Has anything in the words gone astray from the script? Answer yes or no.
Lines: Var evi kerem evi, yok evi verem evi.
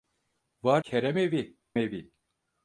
yes